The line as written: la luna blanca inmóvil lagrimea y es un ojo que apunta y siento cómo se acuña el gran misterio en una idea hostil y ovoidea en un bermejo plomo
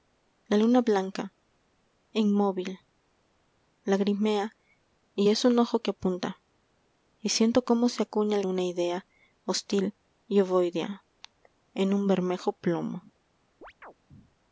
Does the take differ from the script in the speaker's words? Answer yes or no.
yes